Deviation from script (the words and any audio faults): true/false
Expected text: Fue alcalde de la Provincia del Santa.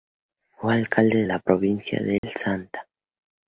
true